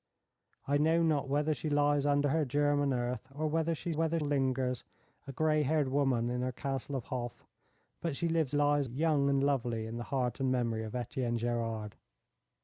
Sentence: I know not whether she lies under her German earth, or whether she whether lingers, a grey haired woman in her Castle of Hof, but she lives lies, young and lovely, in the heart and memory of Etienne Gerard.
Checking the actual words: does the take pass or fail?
pass